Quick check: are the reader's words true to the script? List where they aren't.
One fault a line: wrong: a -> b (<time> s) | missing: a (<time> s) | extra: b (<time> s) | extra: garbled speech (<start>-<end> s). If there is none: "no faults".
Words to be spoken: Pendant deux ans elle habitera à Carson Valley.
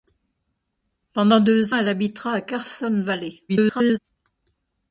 missing: ans (1.8 s)
extra: garbled speech (3.5-4.0 s)